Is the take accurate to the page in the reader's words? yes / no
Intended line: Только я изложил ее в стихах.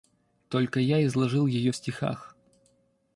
yes